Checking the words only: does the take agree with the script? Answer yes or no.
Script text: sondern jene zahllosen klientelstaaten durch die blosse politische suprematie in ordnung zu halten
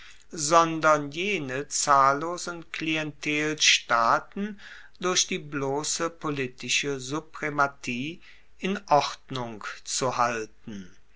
yes